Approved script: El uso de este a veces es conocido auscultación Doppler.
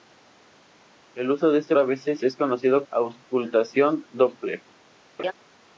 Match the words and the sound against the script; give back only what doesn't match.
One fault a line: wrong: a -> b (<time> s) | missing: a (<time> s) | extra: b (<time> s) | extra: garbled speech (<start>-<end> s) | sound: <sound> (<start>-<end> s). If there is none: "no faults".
sound: laugh (5.2-5.3 s)